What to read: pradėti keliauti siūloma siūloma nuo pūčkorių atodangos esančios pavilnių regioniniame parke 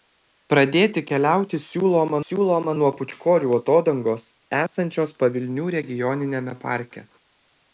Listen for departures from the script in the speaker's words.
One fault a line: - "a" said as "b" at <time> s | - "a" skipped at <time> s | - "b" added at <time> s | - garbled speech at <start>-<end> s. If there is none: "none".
none